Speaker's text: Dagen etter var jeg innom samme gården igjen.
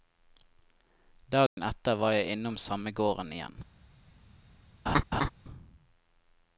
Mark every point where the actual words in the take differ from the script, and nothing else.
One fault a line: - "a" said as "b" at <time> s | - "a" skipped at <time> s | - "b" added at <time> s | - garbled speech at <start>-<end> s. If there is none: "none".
none